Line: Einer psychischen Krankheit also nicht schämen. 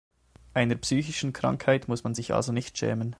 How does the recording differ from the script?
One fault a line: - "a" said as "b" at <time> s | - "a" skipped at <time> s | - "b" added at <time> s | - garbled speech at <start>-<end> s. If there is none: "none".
- "muss man sich" added at 1.9 s